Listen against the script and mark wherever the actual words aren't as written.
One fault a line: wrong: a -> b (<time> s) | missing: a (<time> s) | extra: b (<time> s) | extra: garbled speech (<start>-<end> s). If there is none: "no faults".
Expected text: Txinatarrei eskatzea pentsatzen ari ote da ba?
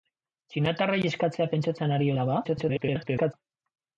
missing: ote (2.1 s)
extra: garbled speech (2.4-3.3 s)